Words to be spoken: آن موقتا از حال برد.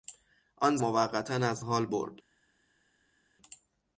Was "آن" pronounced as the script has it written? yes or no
yes